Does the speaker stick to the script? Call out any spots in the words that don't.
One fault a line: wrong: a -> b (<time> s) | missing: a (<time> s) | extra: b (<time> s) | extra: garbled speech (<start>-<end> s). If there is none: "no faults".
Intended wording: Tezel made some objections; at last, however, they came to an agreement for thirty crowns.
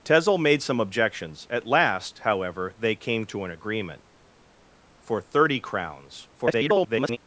extra: garbled speech (6.3-7.2 s)